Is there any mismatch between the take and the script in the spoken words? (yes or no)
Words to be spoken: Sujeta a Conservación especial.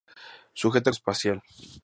yes